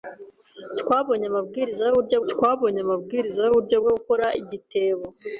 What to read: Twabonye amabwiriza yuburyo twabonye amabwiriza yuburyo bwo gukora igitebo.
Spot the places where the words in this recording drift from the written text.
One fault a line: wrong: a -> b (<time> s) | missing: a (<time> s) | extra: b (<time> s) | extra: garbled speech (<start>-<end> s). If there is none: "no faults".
no faults